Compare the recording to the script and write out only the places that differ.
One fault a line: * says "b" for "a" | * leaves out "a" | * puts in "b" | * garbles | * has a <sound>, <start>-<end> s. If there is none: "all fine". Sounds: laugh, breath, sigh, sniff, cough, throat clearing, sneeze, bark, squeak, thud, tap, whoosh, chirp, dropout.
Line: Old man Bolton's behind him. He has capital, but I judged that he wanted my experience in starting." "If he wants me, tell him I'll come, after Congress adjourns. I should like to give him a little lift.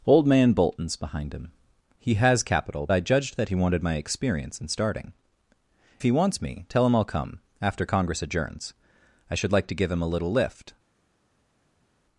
* leaves out "but"
* leaves out "If"